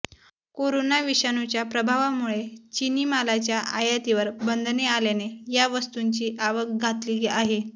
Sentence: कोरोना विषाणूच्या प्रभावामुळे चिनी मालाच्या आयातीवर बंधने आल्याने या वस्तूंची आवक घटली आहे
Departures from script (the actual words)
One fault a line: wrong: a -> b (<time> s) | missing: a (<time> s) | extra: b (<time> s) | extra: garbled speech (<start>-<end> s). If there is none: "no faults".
no faults